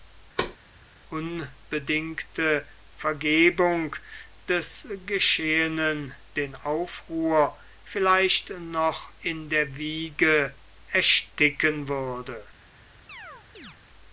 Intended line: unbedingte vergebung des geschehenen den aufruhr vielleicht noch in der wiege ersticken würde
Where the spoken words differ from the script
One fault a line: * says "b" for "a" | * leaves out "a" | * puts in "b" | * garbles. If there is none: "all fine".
all fine